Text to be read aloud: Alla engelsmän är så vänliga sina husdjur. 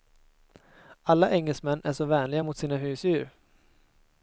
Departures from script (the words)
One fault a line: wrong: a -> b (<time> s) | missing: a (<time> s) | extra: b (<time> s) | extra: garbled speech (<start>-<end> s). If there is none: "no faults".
extra: mot (2.4 s)